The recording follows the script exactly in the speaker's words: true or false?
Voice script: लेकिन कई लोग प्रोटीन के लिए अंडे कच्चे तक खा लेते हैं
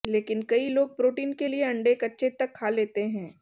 true